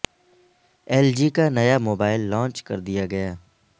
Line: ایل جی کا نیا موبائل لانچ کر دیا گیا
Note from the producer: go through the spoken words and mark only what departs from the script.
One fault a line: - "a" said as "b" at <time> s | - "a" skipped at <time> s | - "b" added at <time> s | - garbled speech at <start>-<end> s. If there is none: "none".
none